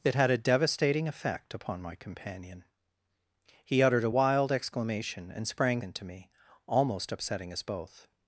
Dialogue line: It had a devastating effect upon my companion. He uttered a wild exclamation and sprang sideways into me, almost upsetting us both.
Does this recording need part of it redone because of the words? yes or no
yes